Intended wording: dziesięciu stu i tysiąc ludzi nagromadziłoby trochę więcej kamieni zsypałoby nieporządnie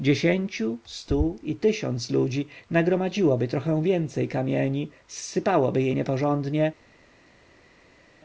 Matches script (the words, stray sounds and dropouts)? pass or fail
fail